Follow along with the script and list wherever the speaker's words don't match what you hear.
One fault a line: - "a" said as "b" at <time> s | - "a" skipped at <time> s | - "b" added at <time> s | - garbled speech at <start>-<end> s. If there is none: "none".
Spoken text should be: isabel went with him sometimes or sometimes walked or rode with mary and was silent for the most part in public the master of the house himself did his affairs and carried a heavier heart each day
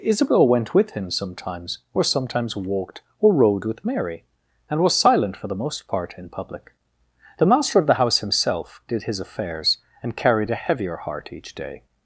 none